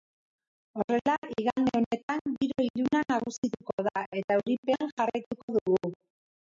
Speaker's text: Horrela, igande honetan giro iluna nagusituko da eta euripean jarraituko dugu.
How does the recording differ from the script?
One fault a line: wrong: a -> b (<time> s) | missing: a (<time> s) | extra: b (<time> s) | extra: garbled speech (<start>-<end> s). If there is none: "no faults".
no faults